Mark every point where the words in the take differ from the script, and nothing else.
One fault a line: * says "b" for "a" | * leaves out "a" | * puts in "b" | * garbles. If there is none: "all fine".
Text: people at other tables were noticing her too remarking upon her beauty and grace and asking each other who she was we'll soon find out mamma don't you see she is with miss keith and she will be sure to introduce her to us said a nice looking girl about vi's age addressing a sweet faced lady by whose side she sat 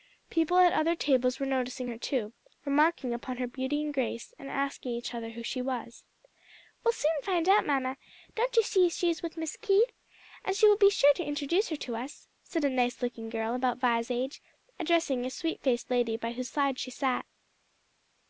all fine